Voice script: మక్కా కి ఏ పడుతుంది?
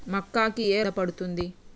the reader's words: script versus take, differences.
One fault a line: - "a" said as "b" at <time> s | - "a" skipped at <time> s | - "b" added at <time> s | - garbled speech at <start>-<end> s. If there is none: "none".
none